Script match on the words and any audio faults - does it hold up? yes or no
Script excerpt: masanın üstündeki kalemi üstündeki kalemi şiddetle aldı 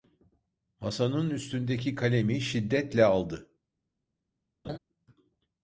no